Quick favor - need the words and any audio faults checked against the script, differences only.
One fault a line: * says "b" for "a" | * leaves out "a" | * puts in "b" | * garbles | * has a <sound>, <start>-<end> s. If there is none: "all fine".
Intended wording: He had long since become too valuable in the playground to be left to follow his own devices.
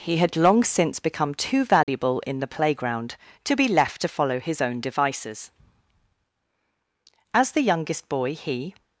* has a dropout, 1.8-1.9 s
* puts in "As the youngest boy he"